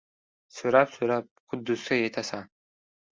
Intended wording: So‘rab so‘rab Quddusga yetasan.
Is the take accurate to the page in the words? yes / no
yes